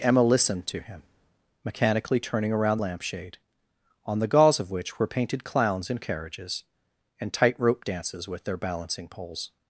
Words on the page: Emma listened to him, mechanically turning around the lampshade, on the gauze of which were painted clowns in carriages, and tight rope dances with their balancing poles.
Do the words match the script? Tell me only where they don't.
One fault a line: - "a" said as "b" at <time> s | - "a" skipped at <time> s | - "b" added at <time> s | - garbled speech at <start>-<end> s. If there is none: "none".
- "the" skipped at 2.8 s